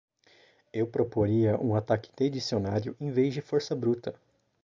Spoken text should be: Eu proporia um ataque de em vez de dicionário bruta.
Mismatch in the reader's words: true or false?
true